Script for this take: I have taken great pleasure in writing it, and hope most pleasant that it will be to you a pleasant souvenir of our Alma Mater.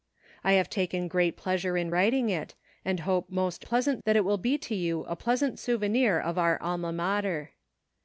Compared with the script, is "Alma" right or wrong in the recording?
right